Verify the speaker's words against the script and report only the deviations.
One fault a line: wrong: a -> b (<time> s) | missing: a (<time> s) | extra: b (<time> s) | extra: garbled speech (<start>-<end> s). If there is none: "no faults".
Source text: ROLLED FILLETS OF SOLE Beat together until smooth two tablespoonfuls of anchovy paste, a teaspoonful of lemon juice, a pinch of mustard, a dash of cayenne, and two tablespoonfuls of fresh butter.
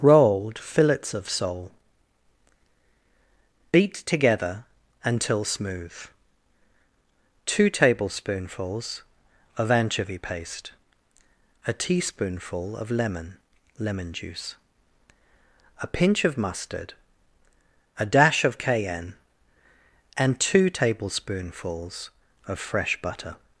extra: lemon (13.8 s)